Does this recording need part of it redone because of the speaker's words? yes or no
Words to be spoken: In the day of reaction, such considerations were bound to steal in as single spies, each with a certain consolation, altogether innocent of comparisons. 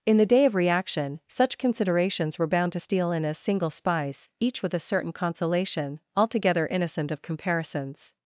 no